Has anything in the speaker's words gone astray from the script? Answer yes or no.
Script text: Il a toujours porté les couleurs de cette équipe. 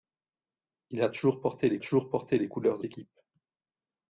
yes